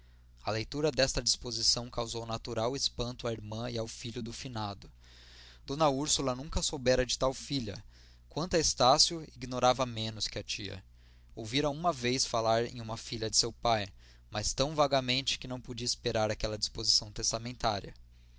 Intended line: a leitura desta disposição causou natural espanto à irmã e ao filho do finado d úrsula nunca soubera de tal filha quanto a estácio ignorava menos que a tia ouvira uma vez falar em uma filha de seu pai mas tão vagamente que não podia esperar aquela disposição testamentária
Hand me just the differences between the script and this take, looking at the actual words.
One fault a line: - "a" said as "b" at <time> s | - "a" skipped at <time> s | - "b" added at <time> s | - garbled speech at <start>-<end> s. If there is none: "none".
none